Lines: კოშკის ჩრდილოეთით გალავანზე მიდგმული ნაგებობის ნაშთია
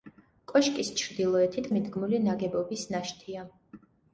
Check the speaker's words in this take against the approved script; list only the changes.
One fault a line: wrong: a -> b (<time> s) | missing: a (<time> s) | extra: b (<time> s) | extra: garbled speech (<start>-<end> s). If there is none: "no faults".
missing: გალავანზე (1.7 s)